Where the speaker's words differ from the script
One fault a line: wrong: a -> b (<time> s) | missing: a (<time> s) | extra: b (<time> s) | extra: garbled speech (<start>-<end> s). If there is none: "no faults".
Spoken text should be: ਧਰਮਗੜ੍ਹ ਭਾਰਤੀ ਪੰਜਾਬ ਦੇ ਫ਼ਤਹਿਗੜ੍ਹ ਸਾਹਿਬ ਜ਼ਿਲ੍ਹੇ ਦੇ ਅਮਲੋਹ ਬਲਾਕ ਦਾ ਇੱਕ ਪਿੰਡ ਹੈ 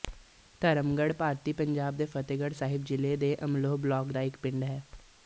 no faults